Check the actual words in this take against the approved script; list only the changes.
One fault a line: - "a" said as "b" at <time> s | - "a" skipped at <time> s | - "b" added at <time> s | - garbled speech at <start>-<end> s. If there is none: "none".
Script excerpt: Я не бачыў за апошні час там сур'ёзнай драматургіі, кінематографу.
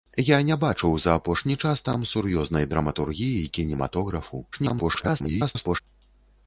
- garbled speech at 4.5-5.8 s